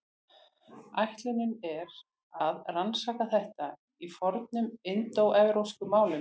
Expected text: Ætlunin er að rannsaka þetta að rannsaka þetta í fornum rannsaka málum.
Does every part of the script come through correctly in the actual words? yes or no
no